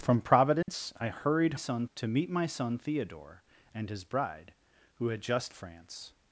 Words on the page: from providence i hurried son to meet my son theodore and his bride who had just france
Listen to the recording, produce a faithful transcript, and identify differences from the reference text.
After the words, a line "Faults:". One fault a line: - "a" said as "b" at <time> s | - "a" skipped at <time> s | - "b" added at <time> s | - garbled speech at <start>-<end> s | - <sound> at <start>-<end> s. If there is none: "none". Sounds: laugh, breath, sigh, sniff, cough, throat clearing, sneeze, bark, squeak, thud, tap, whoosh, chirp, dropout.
from providence i hurried son to meet my son theodore and his bride who had just france
Faults:
- dropout at 0.6-0.7 s